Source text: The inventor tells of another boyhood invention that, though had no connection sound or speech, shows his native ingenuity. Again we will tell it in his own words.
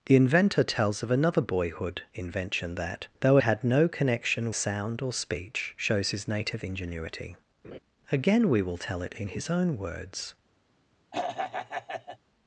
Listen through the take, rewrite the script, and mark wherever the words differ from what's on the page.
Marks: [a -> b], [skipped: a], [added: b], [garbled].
The inventor tells of another boyhood invention that, though had no connection sound or speech, shows his native ingenuity. Again we will tell it in his own words.